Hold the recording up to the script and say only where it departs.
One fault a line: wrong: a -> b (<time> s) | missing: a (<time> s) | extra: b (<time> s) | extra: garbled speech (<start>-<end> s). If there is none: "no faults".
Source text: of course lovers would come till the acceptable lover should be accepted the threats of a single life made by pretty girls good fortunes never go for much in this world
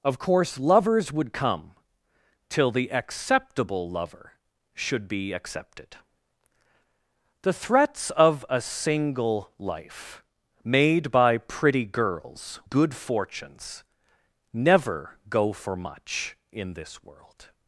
no faults